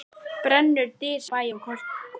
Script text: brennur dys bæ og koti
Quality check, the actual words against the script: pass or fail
pass